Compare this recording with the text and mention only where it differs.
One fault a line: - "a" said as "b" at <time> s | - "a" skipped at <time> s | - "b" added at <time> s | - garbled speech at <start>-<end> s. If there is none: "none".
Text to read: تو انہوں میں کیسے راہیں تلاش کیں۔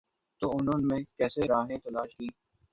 none